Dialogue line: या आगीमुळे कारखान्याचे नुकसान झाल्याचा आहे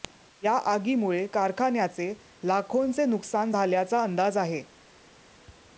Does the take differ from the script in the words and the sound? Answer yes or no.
yes